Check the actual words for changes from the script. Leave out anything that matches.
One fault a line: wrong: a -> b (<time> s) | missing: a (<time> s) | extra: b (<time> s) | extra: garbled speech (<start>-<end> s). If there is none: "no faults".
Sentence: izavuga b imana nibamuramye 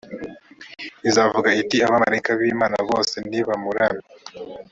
extra: iti abamarayika (1.6 s)
extra: bose (2.9 s)